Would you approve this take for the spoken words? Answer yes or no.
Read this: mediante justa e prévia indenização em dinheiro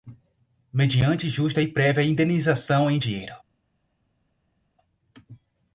yes